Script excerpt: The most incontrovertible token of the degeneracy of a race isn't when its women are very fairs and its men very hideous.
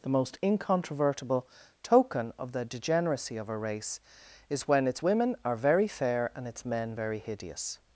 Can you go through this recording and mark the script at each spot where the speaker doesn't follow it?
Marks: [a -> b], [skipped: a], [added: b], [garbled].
The most incontrovertible token of the degeneracy of a race [isn't -> is] when its women are very [fairs -> fair] and its men very hideous.